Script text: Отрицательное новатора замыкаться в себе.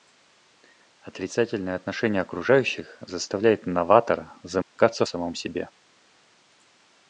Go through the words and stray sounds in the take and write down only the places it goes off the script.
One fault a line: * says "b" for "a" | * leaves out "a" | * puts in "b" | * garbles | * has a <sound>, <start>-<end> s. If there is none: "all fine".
* puts in "отношение окружающих заставляет"
* has a dropout, 4.6-4.8 s
* puts in "самом"